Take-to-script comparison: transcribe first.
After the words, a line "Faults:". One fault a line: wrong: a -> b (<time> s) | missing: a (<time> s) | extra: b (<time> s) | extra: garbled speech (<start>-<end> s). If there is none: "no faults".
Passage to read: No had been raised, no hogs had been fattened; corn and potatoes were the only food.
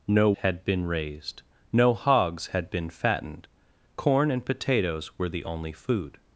No had been raised, no hogs had been fattened; corn and potatoes were the only food.
Faults:
no faults